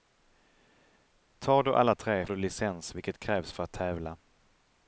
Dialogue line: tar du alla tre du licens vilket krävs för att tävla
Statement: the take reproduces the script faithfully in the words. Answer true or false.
true